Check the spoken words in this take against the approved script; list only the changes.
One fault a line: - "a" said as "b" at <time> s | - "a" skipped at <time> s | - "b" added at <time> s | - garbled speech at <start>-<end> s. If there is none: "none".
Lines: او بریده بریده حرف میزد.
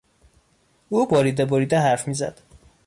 none